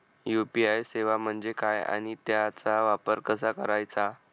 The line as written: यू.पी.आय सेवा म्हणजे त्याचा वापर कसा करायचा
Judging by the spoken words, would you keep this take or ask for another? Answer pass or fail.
fail